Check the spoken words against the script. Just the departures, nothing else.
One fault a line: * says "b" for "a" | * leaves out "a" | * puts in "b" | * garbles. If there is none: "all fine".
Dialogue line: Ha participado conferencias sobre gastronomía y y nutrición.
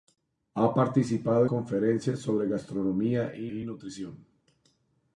all fine